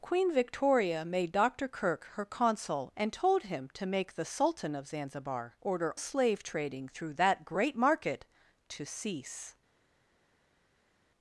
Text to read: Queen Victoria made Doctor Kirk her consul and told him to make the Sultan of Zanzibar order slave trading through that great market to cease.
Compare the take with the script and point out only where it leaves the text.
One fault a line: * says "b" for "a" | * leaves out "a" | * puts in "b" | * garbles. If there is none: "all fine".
all fine